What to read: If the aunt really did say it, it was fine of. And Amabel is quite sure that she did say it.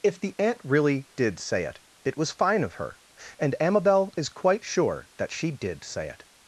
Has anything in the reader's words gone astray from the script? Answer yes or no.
yes